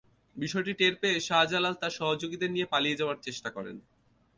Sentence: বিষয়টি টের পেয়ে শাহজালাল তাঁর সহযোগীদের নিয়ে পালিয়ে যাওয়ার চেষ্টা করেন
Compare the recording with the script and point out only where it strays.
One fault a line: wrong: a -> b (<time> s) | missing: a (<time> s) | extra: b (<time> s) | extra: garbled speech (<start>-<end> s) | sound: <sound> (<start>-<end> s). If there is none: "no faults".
no faults